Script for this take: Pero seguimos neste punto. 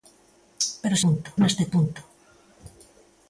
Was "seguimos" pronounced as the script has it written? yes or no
no